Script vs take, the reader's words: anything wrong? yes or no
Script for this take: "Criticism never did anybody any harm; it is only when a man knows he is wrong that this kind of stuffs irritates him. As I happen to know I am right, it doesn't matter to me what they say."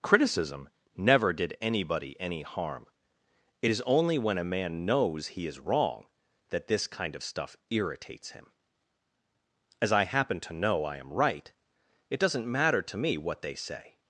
yes